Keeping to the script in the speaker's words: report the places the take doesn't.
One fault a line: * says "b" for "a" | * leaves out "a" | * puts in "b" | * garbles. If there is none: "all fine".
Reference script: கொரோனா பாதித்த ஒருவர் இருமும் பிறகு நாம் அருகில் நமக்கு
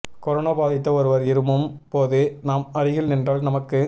* says "போது" for "பிறகு"
* puts in "நின்றால்"